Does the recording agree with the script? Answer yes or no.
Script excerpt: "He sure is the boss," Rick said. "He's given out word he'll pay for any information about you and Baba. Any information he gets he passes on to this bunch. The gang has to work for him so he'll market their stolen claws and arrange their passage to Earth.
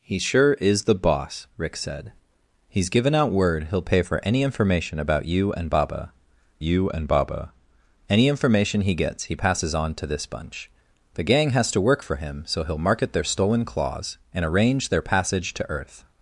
no